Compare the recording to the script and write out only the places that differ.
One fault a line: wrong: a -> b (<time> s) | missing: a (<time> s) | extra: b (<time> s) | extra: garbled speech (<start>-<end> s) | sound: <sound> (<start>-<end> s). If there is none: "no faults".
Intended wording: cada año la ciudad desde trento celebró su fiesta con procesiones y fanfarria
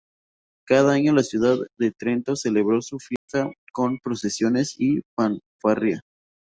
wrong: desde -> de (1.8 s)
sound: dropout (3.2-3.3 s)